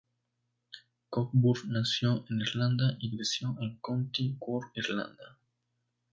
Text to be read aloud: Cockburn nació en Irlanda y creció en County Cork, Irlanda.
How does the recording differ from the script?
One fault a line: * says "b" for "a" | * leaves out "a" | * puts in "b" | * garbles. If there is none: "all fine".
all fine